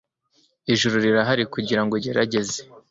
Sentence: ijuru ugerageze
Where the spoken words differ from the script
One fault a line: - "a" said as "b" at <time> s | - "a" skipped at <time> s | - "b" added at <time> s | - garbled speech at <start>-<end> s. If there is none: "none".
- "rirahari kugirango" added at 1.1 s